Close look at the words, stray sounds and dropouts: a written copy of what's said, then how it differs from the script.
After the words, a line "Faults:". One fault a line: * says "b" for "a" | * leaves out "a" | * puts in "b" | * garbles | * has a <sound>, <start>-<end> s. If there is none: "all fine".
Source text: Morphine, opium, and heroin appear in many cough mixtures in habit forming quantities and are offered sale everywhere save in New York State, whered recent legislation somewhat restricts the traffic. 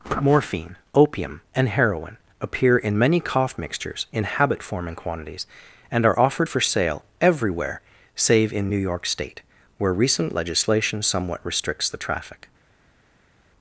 Morphine, opium, and heroin appear in many cough mixtures in habit forming quantities and are offered for sale everywhere save in New York State, where recent legislation somewhat restricts the traffic.
Faults:
* puts in "for"
* says "where" for "whered"